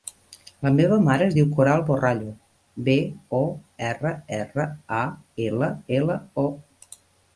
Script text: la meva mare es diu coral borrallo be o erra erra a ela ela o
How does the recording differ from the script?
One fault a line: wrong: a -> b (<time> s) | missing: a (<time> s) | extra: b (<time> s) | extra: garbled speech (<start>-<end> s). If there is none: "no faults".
no faults